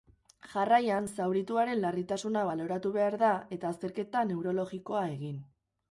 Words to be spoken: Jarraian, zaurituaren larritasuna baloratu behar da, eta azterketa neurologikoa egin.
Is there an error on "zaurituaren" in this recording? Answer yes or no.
no